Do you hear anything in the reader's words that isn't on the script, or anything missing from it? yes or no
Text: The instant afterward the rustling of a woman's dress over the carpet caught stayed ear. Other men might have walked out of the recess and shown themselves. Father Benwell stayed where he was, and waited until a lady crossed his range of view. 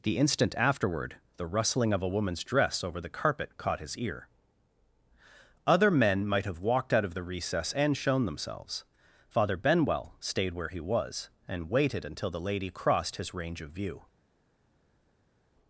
yes